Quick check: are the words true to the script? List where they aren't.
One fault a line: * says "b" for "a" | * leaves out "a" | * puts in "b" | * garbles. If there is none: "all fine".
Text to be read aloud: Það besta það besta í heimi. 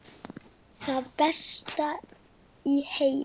* leaves out "það besta"